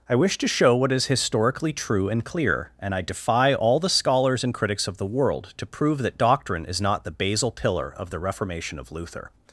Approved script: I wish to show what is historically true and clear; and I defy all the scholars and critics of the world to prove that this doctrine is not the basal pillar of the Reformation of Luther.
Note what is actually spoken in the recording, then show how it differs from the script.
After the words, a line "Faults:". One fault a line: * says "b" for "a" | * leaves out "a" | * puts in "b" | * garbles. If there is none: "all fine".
I wish to show what is historically true and clear; and I defy all the scholars and critics of the world to prove that doctrine is not the basal pillar of the Reformation of Luther.
Faults:
* leaves out "this"